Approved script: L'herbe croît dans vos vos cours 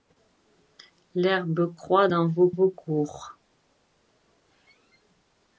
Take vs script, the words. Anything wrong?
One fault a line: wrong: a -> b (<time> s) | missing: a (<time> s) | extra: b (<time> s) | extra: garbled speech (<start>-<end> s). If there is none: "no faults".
no faults